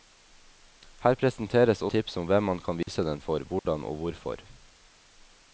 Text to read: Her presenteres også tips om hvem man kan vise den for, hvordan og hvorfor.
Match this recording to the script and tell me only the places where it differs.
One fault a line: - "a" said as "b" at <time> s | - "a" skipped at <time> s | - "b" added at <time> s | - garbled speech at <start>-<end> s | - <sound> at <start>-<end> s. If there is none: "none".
- "også" skipped at 1.8 s
- dropout at 2.8-2.9 s
- dropout at 3.6-3.7 s